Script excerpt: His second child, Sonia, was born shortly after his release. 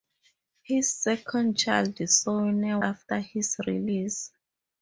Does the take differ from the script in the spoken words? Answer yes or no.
yes